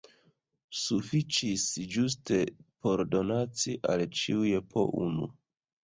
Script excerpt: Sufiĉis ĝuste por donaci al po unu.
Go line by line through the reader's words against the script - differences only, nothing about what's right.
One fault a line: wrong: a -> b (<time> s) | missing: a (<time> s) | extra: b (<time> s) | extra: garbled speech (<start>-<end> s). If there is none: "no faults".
extra: ĉiuj (4.2 s)